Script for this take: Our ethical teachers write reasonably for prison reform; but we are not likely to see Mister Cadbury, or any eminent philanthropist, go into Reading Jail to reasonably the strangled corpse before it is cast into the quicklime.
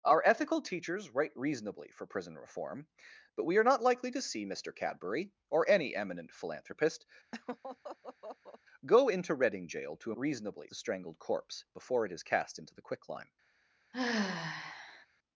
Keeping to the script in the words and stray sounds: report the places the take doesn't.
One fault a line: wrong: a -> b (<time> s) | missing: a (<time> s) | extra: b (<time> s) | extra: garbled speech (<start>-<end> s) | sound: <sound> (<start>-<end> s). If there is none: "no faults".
sound: laugh (7.3-8.6 s)
sound: sigh (13.9-15.1 s)